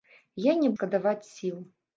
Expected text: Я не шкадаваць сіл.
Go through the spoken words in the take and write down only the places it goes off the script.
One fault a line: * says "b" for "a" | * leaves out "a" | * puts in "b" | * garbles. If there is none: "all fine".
all fine